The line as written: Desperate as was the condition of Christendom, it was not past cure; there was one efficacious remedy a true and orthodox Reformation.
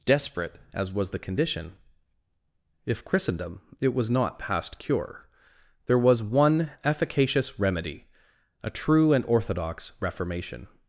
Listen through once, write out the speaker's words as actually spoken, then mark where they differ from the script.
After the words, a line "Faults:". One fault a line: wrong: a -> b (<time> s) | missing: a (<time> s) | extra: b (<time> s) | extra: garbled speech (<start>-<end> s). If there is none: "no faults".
Desperate as was the condition if Christendom, it was not past cure; there was one efficacious remedy a true and orthodox Reformation.
Faults:
wrong: of -> if (2.9 s)